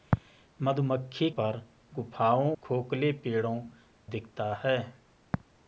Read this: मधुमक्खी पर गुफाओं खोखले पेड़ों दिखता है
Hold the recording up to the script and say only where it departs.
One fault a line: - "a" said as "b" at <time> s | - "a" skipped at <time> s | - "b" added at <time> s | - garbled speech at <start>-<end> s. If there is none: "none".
none